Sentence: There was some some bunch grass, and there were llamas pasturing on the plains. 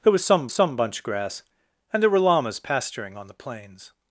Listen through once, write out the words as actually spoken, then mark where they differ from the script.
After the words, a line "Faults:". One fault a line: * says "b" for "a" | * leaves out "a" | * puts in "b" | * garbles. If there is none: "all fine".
There was some some bunch grass, and there were llamas pasturing on the plains.
Faults:
all fine